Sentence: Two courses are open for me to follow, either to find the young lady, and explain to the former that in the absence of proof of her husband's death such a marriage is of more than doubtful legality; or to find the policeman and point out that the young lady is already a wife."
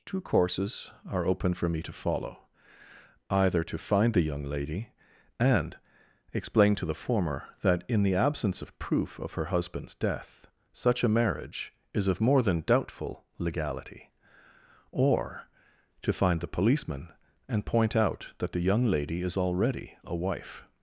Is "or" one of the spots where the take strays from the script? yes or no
no